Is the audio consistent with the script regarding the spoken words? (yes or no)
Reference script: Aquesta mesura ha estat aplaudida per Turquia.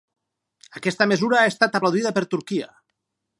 yes